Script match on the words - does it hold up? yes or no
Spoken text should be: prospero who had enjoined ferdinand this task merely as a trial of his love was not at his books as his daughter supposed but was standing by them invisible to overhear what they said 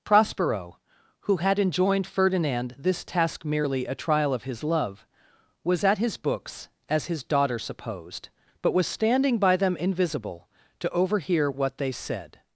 no